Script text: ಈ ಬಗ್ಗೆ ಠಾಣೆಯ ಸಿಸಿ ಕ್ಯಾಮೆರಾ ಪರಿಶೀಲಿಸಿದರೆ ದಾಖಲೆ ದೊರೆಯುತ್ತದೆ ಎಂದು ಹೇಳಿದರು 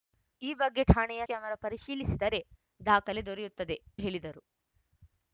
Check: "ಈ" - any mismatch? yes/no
no